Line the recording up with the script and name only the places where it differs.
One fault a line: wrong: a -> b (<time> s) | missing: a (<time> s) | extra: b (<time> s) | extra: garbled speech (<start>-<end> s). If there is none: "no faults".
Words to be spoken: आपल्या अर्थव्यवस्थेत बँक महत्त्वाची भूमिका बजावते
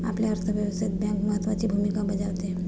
no faults